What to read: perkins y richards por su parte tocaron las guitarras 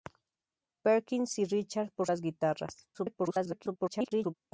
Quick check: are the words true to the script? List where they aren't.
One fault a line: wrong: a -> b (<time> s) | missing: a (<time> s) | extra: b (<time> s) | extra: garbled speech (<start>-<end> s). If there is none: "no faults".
missing: su parte tocaron (2.1 s)
extra: garbled speech (2.9-4.4 s)